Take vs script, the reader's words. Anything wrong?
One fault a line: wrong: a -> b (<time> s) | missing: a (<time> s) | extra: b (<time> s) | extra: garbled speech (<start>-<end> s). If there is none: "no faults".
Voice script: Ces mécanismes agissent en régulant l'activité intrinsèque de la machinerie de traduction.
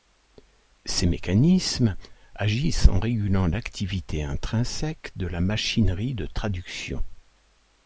no faults